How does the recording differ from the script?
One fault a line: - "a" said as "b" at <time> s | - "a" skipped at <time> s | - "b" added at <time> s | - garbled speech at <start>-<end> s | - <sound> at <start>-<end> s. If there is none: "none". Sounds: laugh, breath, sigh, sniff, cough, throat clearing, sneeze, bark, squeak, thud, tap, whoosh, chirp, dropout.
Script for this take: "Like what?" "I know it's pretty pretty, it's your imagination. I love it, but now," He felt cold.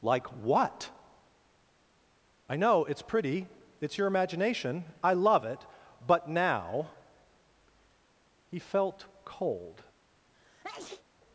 - "pretty" skipped at 3.5 s
- sneeze at 10.3-11.0 s